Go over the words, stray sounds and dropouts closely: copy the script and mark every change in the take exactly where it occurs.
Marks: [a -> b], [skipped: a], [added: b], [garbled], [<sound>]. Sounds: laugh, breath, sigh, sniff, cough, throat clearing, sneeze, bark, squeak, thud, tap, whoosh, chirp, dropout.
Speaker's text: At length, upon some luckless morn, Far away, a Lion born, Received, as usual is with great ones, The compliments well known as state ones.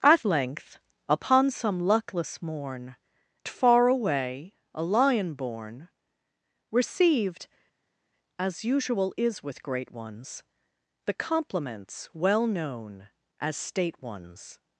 At length, upon some luckless morn, Far away, a Lion born, Received, as usual is with great ones, The compliments well known as state ones.